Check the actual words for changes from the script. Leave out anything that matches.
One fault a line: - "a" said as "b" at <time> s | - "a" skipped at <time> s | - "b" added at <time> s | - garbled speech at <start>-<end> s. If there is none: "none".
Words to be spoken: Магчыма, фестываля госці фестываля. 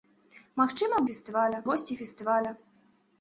none